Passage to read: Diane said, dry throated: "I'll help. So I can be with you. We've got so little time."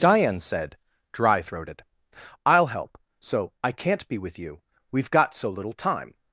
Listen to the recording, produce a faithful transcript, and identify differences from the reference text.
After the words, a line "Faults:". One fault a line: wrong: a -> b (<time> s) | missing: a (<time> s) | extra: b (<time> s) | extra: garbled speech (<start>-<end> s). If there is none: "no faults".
Diane said, dry throated: "I'll help. So I can't be with you. We've got so little time."
Faults:
wrong: can -> can't (3.7 s)